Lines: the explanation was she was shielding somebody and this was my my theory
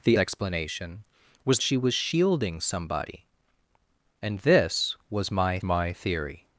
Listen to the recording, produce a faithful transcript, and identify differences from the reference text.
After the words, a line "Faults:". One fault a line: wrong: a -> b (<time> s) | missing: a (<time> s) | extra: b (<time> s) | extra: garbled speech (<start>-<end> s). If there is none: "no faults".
the explanation was she was shielding somebody and this was my my theory
Faults:
no faults